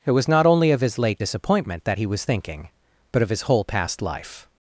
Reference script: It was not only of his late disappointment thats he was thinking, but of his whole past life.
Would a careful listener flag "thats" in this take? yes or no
yes